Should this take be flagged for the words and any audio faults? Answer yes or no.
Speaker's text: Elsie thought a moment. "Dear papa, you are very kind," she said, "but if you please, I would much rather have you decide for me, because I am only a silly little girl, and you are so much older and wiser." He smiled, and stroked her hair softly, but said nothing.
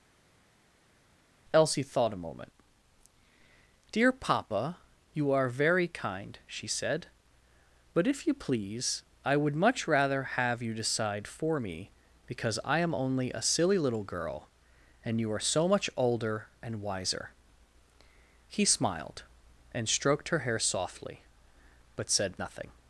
no